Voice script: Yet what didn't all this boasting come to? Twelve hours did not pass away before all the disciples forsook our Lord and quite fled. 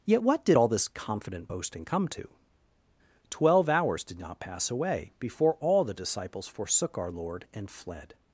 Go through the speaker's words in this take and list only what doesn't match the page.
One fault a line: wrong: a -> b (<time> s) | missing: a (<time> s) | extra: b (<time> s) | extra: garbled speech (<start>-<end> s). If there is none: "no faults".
wrong: didn't -> did (0.5 s)
extra: confident (0.9 s)
missing: quite (7.7 s)